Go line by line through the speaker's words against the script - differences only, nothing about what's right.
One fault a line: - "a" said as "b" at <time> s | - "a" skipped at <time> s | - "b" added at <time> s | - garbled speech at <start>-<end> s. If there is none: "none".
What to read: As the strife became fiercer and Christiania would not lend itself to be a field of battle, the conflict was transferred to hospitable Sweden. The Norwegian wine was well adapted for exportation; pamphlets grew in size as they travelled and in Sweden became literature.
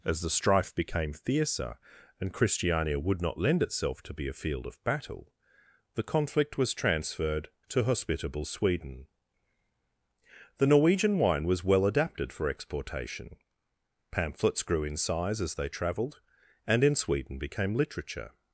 none